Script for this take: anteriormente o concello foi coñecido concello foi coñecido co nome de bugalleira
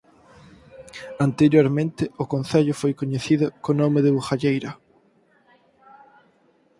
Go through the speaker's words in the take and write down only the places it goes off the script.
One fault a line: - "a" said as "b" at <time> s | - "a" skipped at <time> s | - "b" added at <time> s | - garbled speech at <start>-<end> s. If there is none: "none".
- "concello foi coñecido" skipped at 3.5 s